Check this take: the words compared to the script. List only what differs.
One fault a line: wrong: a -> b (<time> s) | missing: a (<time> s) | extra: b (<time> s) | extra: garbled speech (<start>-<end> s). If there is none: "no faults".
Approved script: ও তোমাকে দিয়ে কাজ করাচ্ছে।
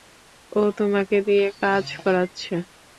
no faults